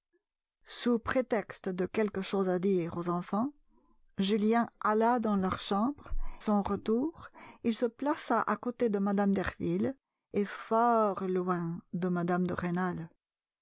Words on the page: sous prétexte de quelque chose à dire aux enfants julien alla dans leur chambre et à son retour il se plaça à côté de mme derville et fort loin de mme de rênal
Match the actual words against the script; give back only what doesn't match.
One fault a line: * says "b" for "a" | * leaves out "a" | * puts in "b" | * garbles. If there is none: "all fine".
* leaves out "et à"